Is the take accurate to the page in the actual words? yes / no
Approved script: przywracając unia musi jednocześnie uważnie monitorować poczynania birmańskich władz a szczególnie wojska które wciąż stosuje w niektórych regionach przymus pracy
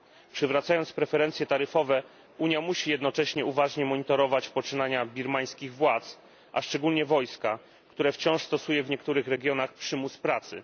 no